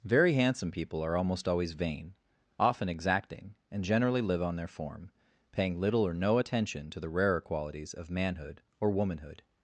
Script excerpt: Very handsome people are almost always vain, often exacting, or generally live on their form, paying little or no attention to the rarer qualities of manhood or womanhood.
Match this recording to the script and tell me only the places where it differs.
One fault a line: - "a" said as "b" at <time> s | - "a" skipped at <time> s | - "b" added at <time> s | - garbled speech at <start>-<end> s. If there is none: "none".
- "or" said as "and" at 3.7 s